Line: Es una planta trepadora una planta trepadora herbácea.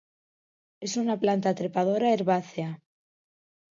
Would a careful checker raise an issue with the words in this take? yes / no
yes